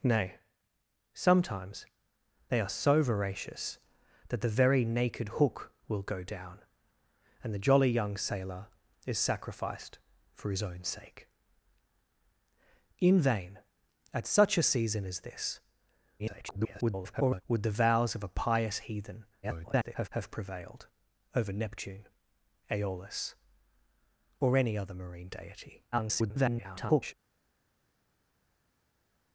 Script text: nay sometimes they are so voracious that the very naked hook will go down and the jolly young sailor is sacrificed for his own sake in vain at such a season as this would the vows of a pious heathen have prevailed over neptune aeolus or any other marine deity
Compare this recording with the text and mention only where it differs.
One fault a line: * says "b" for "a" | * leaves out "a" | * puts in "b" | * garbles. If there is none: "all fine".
* garbles
* garbles
* garbles